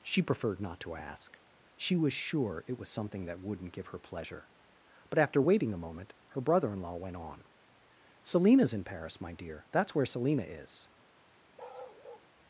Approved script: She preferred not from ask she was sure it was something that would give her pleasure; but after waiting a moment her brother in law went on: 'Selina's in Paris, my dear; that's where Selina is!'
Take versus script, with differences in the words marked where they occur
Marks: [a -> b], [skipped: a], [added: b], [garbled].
She preferred not [from -> to] ask she was sure it was something that [would -> wouldn't] give her pleasure; but after waiting a moment her brother in law went on: 'Selina's in Paris, my dear; that's where Selina is!'